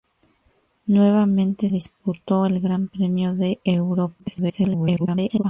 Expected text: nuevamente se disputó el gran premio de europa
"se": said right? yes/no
no